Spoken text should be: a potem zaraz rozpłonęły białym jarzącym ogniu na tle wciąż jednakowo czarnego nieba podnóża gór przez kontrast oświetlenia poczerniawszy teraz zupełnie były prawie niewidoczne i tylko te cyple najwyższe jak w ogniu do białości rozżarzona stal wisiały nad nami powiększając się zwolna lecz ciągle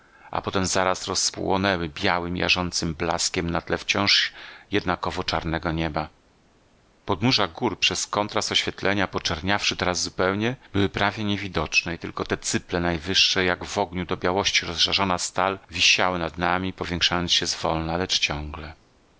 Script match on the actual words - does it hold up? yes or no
no